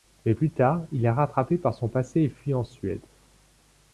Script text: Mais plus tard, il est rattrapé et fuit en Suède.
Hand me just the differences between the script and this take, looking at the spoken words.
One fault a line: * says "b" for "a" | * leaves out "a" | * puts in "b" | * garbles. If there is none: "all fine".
* puts in "par son passé"